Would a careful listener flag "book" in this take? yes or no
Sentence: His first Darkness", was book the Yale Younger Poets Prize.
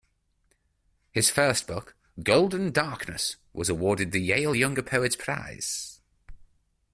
yes